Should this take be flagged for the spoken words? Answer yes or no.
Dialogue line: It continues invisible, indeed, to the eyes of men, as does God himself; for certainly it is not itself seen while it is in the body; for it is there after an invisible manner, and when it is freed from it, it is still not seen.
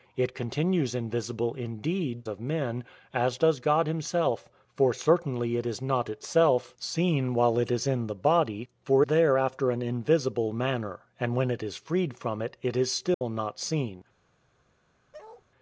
yes